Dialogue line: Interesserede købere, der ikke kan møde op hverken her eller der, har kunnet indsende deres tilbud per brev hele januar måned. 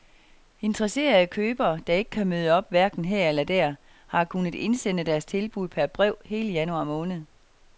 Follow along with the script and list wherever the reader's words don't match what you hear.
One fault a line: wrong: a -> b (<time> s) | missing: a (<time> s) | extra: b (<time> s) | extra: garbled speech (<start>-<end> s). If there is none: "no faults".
no faults